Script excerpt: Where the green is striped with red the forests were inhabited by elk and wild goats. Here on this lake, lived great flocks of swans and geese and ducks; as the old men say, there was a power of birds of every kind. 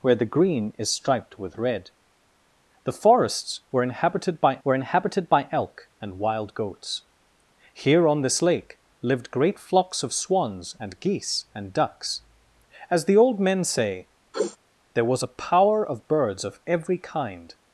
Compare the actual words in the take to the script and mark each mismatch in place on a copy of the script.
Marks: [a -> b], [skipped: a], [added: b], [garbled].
Where the green is striped with red the forests were inhabited by [added: were inhabited by] elk and wild goats. Here on this lake, lived great flocks of swans and geese and ducks; as the old men say, there was a power of birds of every kind.